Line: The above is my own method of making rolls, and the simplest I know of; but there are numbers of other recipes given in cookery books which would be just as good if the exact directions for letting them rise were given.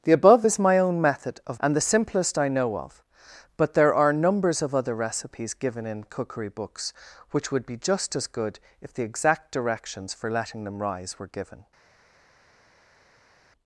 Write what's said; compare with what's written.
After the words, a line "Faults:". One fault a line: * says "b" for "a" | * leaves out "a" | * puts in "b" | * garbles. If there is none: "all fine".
The above is my own method of and the simplest I know of; but there are numbers of other recipes given in cookery books which would be just as good if the exact directions for letting them rise were given.
Faults:
* leaves out "making rolls"